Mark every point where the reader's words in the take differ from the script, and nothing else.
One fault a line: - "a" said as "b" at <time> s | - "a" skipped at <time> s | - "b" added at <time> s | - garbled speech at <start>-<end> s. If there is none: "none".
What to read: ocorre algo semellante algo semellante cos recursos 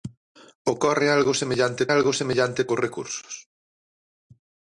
none